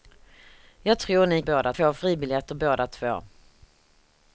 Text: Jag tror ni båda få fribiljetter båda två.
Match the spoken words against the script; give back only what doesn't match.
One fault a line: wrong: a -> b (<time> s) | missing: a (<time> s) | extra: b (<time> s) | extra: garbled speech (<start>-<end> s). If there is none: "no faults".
no faults